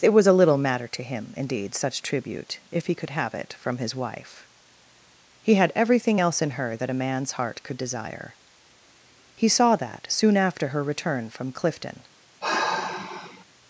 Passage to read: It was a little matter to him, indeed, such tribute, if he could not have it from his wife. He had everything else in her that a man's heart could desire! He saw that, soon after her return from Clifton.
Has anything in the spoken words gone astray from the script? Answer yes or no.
yes